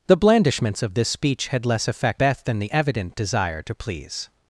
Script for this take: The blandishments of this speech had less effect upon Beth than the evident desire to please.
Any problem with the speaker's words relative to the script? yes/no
yes